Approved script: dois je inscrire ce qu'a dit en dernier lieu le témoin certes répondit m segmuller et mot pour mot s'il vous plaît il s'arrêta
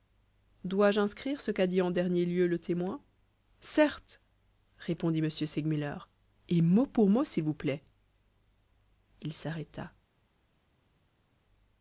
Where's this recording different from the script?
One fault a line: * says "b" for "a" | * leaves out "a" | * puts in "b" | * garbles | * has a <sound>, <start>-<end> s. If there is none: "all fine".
all fine